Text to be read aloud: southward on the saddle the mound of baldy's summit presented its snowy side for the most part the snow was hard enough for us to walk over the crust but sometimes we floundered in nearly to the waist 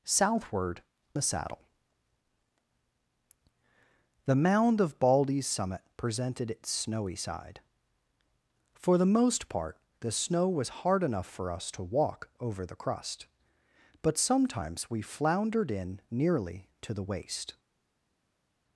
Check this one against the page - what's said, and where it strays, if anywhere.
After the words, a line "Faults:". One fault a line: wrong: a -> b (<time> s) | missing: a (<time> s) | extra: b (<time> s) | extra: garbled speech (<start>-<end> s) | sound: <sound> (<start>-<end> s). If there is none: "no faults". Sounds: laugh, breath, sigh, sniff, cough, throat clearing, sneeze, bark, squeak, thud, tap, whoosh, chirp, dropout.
southward the saddle the mound of baldy's summit presented its snowy side for the most part the snow was hard enough for us to walk over the crust but sometimes we floundered in nearly to the waist
Faults:
missing: on (0.8 s)